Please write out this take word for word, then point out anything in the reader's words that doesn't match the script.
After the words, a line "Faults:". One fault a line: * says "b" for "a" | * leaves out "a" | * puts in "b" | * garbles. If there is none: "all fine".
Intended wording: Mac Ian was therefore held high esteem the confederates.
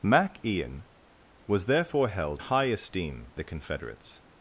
Mac Ian was therefore held high esteem the confederates.
Faults:
all fine